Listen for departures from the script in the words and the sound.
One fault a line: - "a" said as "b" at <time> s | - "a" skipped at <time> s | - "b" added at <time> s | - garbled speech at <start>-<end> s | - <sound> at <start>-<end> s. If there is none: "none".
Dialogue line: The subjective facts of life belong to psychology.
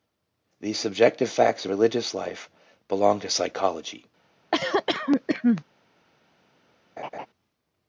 - "religious" added at 1.7 s
- cough at 4.5-5.6 s
- laugh at 7.0-7.3 s